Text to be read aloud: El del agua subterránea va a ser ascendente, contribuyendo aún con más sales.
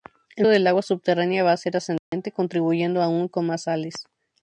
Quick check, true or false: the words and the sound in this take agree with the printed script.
false